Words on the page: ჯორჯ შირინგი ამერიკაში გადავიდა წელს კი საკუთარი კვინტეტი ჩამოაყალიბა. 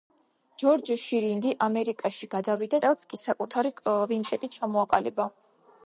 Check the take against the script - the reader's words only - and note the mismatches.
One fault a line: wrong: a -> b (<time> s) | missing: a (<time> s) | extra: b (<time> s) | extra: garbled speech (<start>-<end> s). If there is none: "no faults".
no faults